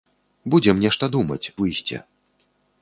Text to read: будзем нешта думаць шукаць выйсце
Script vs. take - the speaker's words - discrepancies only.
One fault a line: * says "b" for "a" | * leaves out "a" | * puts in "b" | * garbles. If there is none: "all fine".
* leaves out "шукаць"